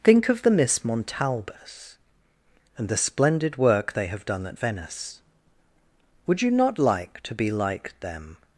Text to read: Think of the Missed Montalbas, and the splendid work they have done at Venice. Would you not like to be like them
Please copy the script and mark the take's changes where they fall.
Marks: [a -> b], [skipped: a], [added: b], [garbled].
Think of the [Missed -> Miss] Montalbas, and the splendid work they have done at Venice. Would you not like to be like them